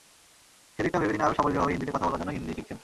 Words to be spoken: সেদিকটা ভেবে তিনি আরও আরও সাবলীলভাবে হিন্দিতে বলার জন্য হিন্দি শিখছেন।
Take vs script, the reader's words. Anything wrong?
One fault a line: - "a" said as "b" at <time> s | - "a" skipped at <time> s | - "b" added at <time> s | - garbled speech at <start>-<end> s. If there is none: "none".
- "আরও" skipped at 1.4 s
- "কথা" added at 1.9 s